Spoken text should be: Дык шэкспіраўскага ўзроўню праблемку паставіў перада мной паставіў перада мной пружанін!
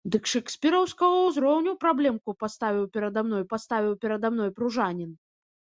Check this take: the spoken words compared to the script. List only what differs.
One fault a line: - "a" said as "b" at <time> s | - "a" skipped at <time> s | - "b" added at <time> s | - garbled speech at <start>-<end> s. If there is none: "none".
none